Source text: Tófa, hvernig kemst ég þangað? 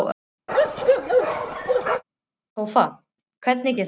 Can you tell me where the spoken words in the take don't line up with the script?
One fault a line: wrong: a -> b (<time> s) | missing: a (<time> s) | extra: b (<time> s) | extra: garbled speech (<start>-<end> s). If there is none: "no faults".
missing: kemst (3.8 s)